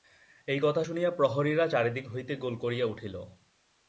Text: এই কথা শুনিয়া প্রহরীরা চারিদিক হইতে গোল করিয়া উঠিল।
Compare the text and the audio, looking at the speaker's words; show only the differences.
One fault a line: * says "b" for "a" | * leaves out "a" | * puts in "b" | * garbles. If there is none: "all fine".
all fine